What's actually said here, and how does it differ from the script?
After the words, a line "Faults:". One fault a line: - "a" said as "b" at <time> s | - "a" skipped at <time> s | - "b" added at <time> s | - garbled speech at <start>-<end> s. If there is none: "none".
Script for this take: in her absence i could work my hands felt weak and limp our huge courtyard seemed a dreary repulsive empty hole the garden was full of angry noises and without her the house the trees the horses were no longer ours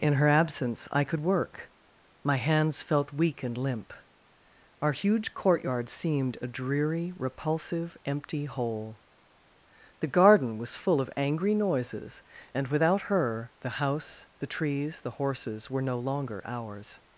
in her absence i could work my hands felt weak and limp our huge courtyard seemed a dreary repulsive empty hole the garden was full of angry noises and without her the house the trees the horses were no longer ours
Faults:
none